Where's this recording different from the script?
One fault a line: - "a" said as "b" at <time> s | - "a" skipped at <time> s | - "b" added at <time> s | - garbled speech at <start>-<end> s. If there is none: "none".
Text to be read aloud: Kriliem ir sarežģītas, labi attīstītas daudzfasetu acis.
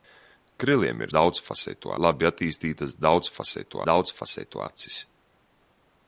- "sarežģītas" said as "daudzfasetu" at 1.2 s
- "daudzfasetu" added at 3.9 s